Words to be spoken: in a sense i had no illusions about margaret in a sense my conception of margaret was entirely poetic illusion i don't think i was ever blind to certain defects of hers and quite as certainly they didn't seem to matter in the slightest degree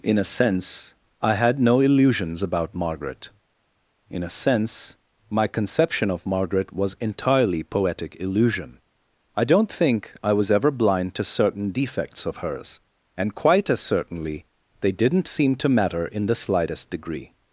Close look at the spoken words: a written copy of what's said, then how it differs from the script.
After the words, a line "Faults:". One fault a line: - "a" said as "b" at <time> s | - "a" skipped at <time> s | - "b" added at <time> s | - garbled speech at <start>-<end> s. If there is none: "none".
in a sense i had no illusions about margaret in a sense my conception of margaret was entirely poetic illusion i don't think i was ever blind to certain defects of hers and quite as certainly they didn't seem to matter in the slightest degree
Faults:
none